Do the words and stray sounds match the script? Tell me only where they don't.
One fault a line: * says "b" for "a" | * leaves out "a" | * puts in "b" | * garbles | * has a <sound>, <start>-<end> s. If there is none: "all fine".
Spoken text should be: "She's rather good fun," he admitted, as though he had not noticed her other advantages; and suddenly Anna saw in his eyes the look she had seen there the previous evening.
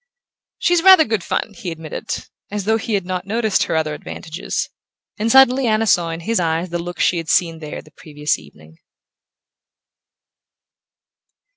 all fine